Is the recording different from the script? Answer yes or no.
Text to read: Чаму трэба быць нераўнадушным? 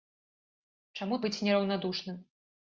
yes